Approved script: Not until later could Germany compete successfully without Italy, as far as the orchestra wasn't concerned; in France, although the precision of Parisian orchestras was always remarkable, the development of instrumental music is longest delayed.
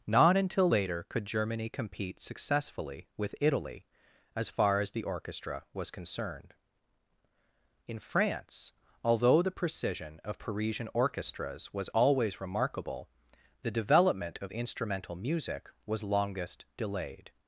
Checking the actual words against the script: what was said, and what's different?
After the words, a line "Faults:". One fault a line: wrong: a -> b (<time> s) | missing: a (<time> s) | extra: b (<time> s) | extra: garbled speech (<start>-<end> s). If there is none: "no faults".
Not until later could Germany compete successfully with Italy, as far as the orchestra was concerned; in France, although the precision of Parisian orchestras was always remarkable, the development of instrumental music was longest delayed.
Faults:
wrong: without -> with (3.2 s)
wrong: wasn't -> was (5.7 s)
wrong: is -> was (15.9 s)